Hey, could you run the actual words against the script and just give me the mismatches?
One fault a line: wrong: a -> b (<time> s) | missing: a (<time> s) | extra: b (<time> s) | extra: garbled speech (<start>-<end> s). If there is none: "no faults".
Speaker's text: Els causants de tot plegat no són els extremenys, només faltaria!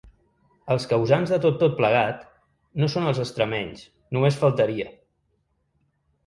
extra: tot (1.6 s)